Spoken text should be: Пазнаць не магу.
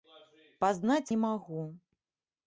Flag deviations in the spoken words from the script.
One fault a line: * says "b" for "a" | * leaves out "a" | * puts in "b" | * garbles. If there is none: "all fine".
all fine